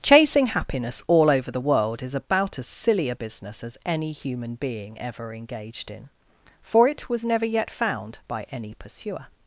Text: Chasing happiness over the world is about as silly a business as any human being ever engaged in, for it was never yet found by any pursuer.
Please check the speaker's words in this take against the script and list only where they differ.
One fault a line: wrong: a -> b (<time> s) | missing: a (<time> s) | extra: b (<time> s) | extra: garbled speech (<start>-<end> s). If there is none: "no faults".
extra: all (1.1 s)